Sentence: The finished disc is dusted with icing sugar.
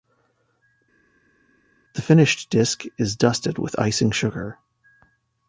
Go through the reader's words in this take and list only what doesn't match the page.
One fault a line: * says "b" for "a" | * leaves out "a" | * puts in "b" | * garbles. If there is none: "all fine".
all fine